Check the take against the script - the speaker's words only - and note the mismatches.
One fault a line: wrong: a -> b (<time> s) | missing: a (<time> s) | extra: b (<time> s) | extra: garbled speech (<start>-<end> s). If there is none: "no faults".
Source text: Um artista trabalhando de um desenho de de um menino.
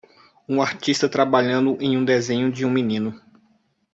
wrong: de -> em (1.8 s)
missing: de (2.6 s)